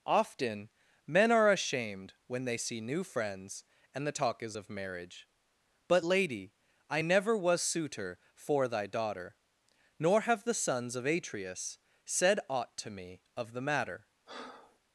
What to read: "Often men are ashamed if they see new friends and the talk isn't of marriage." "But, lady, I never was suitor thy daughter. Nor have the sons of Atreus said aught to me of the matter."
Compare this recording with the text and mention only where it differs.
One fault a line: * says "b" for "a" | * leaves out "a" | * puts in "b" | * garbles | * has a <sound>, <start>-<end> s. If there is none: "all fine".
* says "when" for "if"
* says "is" for "isn't"
* puts in "for"
* has a breath, 14.3-14.8 s